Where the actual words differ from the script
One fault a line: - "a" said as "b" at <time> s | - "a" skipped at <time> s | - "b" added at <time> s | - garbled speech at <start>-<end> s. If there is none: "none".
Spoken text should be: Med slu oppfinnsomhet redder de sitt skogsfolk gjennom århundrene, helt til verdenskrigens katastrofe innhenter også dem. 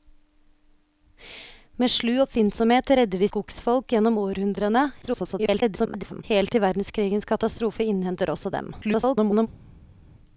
- "sitt" skipped at 3.3 s
- garbled speech at 5.0-6.2 s
- garbled speech at 8.8-9.5 s